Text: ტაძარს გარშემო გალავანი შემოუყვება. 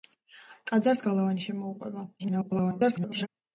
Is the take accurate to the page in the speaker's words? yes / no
no